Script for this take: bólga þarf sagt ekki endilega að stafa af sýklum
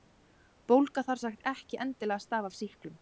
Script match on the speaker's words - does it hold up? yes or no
yes